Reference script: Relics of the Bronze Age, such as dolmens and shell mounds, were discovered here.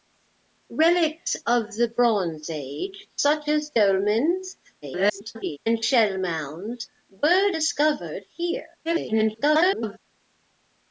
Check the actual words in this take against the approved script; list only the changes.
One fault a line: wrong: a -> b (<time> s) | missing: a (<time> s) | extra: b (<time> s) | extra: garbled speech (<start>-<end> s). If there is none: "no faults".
extra: garbled speech (4.8-5.6 s)
extra: garbled speech (8.9-10.0 s)